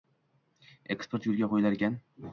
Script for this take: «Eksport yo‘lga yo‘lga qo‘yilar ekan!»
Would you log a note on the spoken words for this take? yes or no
yes